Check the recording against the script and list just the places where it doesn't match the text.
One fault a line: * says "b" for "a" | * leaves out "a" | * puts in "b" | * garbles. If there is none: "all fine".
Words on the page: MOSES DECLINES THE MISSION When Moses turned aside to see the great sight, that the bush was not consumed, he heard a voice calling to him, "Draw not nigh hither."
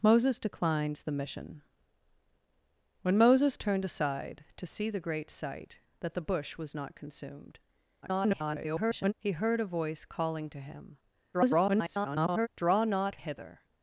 * garbles
* garbles
* leaves out "nigh"